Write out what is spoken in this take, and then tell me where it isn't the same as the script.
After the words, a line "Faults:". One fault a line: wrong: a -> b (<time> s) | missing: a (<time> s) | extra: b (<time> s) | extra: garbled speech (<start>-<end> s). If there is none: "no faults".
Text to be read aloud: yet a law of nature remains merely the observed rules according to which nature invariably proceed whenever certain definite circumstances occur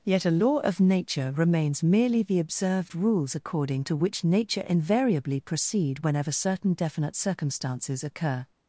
yet a law of nature remains merely the observed rules according to which nature invariably proceed whenever certain definite circumstances occur
Faults:
no faults